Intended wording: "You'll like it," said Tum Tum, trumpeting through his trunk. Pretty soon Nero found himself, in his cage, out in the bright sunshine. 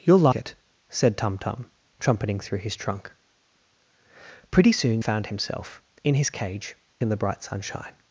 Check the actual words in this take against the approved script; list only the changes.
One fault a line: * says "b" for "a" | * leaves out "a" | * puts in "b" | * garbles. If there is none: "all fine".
* leaves out "like"
* leaves out "Nero"
* leaves out "out"